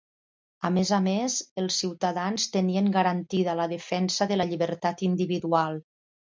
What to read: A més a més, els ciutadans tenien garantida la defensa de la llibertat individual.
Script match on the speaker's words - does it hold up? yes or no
yes